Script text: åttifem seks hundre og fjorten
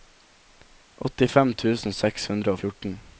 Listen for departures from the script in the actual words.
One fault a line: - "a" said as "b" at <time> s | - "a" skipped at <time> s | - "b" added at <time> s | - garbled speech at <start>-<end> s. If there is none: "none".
- "tusen" added at 1.6 s